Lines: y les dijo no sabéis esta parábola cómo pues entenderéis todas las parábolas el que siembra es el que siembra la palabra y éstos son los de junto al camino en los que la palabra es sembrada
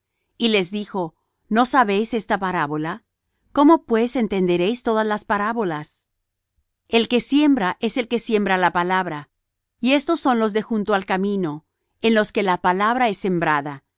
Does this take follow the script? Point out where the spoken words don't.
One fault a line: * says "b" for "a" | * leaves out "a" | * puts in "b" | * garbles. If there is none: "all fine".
all fine